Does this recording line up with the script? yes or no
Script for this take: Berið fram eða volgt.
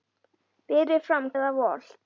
yes